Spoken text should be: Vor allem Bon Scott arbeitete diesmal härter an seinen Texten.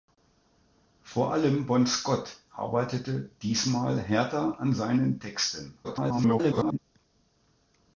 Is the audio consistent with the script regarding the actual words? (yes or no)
no